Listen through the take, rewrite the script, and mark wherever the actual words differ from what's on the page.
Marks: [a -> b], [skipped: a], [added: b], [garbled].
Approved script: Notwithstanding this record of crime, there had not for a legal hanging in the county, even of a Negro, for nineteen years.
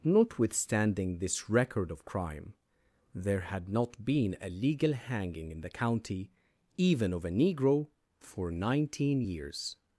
Notwithstanding this record of crime, there had not [for -> been] a legal hanging in the county, even of a Negro, for nineteen years.